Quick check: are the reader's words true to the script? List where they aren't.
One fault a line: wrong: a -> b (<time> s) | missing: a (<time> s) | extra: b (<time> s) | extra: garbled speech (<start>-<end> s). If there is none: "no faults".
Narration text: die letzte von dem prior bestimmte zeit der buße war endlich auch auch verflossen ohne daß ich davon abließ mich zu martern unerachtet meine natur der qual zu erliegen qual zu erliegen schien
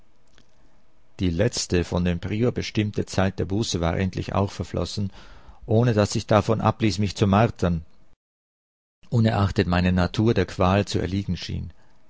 missing: auch (4.5 s)
missing: qual zu erliegen (11.4 s)